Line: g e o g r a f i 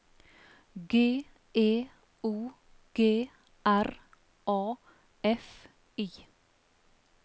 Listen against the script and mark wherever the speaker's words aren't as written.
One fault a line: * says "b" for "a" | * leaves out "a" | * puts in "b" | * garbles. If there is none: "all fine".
all fine